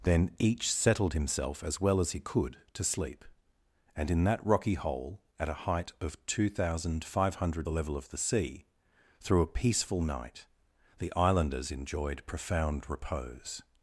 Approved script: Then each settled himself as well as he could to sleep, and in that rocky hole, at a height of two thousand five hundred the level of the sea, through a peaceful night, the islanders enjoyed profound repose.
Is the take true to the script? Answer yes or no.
yes